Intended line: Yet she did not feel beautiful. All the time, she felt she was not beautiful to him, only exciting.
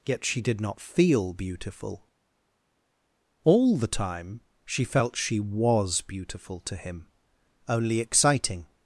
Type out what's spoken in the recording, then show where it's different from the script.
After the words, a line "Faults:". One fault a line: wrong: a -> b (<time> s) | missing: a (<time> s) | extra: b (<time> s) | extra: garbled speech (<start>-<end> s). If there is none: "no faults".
Yet she did not feel beautiful. All the time, she felt she was beautiful to him, only exciting.
Faults:
missing: not (6.0 s)